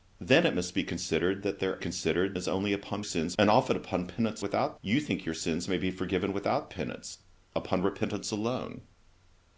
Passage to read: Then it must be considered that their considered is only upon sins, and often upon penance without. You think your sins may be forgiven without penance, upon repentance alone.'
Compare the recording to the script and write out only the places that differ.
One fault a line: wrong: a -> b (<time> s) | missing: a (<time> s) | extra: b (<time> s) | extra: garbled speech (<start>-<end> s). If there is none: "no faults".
no faults